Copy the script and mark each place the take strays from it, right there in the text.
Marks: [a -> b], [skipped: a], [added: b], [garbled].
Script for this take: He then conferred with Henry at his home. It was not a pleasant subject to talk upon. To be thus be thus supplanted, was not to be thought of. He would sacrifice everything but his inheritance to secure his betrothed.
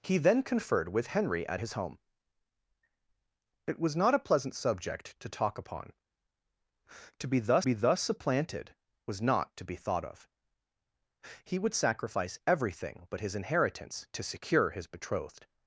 He then conferred with Henry at his home. It was not a pleasant subject to talk upon. To be thus be thus supplanted, was not to be thought of. He would sacrifice everything but his inheritance to secure his betrothed.